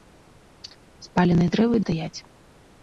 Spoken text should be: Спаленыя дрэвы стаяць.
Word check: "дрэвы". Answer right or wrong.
right